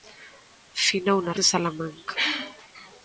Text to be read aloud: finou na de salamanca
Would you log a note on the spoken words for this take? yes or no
no